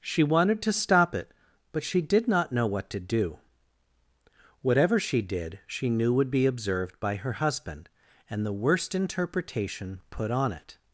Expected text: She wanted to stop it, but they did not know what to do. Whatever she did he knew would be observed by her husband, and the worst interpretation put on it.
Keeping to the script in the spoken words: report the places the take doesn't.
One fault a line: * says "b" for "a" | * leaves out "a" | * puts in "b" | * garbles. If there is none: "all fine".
* says "she" for "they"
* says "she" for "he"